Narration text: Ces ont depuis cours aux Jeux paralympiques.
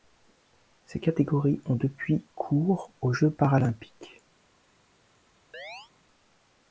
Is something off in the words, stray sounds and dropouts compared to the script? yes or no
yes